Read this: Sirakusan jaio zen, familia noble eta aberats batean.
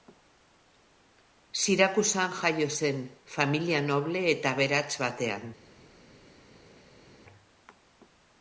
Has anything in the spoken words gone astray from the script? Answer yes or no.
no